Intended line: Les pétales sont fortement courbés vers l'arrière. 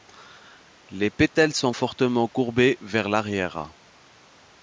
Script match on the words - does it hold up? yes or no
yes